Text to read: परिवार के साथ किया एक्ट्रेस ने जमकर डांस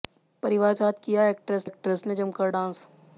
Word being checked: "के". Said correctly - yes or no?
no